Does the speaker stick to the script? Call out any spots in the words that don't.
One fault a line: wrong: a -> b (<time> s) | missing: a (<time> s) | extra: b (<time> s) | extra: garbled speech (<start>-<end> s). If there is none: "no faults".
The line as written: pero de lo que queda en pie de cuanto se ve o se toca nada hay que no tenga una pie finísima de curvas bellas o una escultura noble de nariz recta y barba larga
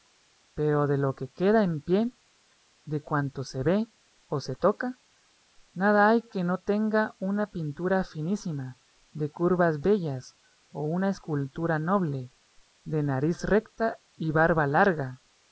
wrong: pie -> pintura (7.5 s)